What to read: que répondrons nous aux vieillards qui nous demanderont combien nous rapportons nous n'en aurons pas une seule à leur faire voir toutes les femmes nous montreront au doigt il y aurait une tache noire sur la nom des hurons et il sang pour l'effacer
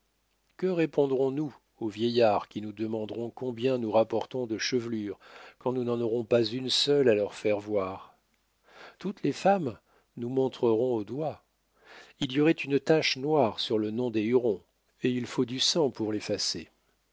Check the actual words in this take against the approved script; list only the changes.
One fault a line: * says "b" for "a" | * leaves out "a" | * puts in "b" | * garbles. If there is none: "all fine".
* puts in "de chevelures quand"
* says "le" for "la"
* puts in "faut du"